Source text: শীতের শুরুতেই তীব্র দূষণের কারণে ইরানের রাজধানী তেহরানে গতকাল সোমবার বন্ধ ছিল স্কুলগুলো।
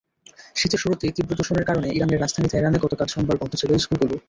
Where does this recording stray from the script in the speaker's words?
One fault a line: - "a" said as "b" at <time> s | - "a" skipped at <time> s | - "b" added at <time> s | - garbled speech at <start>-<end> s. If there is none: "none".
none